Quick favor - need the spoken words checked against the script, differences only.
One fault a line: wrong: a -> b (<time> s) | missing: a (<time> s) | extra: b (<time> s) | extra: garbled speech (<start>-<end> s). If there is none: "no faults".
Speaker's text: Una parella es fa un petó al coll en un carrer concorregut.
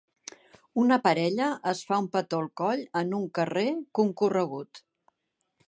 no faults